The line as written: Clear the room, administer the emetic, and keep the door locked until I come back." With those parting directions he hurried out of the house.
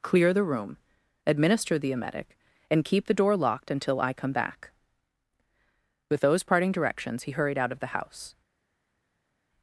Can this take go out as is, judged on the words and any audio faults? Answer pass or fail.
pass